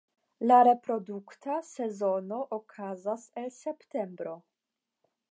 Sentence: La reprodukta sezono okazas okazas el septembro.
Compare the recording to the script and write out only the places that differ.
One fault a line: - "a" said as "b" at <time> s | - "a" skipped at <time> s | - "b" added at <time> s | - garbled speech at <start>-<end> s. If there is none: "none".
- "okazas" skipped at 3.2 s